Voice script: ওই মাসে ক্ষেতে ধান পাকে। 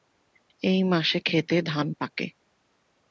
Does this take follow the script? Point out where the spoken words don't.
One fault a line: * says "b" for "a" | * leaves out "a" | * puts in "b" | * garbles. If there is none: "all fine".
* says "এই" for "ওই"